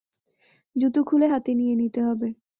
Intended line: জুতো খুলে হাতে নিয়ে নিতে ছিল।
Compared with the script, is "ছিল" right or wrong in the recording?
wrong